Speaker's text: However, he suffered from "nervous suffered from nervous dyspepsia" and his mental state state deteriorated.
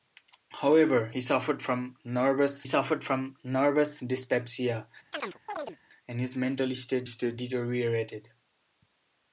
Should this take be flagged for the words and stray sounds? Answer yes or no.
yes